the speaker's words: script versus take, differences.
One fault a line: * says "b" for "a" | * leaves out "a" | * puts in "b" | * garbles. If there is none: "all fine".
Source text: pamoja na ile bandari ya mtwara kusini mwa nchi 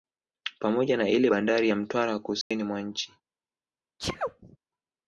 all fine